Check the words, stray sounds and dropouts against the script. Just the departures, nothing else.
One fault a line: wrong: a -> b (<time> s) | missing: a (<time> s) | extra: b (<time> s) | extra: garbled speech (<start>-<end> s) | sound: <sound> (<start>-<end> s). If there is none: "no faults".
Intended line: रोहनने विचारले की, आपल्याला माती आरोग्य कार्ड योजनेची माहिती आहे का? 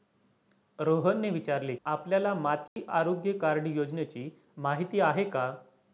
missing: की (1.8 s)
sound: dropout (2.7-2.8 s)